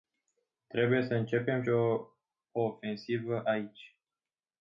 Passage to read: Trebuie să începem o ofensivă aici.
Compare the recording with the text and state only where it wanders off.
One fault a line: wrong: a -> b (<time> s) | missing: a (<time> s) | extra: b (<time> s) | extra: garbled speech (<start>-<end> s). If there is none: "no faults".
no faults